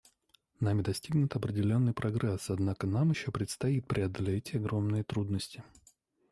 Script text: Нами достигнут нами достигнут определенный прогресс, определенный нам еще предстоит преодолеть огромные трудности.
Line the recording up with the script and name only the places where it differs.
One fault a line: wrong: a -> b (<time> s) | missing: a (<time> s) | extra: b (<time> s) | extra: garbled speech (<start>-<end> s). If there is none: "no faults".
missing: нами достигнут (1.3 s)
wrong: определенный -> однако (2.5 s)